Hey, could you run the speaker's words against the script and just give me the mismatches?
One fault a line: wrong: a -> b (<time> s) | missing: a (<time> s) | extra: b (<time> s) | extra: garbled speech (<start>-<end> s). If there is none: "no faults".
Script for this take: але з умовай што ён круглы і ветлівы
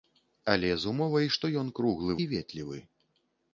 no faults